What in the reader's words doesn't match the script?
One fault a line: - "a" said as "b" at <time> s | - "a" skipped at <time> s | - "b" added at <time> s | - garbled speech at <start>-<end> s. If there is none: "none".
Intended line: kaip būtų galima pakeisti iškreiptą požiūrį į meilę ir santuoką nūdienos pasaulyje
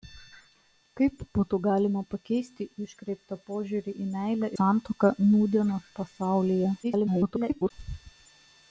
- "ir" skipped at 4.5 s
- garbled speech at 6.8-7.7 s